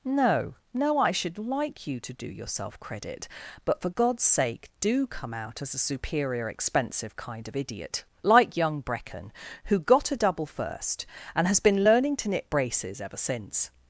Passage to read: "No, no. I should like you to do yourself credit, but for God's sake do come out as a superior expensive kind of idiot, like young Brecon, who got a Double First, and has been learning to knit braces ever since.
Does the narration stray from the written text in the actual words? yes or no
no